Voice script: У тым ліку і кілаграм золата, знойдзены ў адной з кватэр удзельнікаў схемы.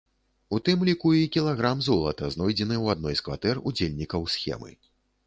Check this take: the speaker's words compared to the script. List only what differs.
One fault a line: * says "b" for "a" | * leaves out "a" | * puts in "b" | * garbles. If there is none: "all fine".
all fine